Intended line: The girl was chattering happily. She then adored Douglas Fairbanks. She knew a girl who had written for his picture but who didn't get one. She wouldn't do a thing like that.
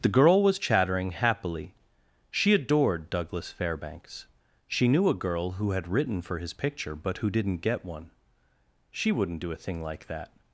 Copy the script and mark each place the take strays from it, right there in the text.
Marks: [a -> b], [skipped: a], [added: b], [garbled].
The girl was chattering happily. She [skipped: then] adored Douglas Fairbanks. She knew a girl who had written for his picture but who didn't get one. She wouldn't do a thing like that.